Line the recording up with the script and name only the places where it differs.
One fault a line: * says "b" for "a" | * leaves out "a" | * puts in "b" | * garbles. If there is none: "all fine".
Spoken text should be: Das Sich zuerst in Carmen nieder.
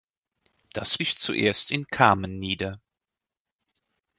all fine